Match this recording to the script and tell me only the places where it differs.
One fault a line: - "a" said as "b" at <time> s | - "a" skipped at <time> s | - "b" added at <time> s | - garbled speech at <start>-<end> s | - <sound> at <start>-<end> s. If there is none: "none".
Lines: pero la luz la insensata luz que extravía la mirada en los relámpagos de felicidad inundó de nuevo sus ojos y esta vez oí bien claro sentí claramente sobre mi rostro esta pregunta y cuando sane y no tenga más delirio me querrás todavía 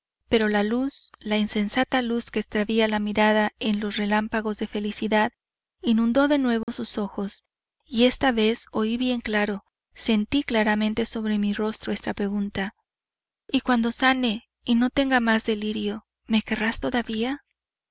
- dropout at 6.6-6.7 s